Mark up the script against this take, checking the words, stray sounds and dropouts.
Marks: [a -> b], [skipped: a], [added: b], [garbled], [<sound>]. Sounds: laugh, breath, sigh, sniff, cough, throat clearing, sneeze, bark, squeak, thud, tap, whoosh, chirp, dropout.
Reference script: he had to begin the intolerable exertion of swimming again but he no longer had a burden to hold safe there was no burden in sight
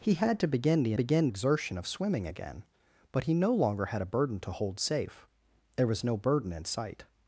he had to begin the [intolerable -> begin] exertion of swimming again but he no longer had a burden to hold safe there was no burden in sight